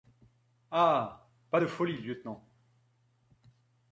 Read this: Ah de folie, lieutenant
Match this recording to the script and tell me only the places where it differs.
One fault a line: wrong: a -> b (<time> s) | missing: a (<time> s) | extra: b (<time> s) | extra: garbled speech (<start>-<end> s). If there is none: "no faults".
extra: pas (1.5 s)